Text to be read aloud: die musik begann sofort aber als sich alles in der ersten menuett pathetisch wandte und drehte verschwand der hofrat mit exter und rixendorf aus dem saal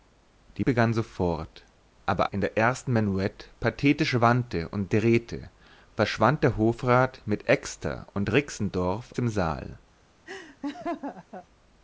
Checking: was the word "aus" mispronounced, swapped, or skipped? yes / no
yes